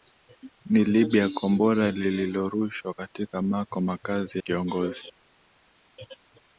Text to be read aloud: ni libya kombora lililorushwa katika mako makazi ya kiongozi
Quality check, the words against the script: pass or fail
fail